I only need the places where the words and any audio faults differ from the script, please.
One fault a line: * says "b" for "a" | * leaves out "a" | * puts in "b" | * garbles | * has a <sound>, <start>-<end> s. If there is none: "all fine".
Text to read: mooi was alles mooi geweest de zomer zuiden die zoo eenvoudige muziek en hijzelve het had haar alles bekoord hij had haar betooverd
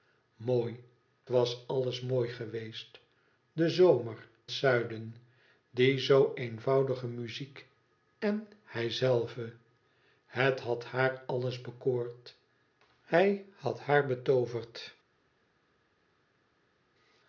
all fine